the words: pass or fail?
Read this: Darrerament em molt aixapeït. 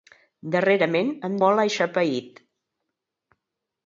pass